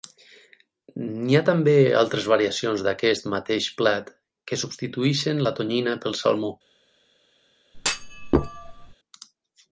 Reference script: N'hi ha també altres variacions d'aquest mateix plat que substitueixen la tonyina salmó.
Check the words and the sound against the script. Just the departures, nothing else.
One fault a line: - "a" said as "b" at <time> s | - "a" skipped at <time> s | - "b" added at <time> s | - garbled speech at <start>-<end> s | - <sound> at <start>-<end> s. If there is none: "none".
- "pel" added at 6.1 s
- thud at 7.7-8.9 s